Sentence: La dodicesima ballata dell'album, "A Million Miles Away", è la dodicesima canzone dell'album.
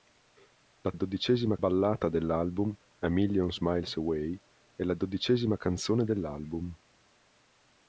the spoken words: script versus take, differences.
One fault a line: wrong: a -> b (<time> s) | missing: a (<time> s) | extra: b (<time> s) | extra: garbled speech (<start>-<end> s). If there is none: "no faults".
no faults